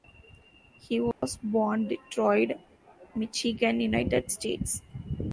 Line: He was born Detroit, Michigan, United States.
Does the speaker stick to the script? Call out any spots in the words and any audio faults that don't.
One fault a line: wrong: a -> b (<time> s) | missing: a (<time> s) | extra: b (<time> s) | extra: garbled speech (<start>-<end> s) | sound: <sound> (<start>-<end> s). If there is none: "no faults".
sound: dropout (1.1-1.2 s)